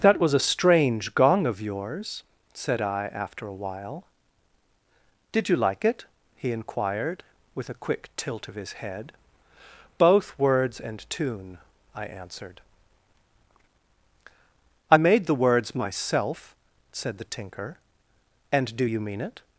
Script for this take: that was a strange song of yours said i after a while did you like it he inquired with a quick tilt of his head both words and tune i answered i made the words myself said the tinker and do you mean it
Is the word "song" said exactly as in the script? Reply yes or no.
no